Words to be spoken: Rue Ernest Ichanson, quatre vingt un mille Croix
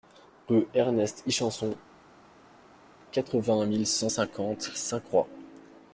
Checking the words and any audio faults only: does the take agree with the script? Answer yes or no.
no